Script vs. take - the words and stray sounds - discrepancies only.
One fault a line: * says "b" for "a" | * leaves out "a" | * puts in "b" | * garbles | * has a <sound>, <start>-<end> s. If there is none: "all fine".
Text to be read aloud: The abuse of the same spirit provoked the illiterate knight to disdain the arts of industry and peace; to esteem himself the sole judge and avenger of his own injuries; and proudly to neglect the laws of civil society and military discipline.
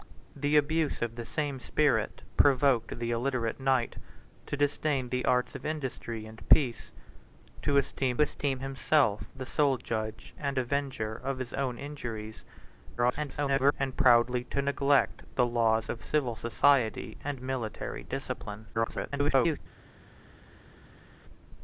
* puts in "esteem"
* garbles
* garbles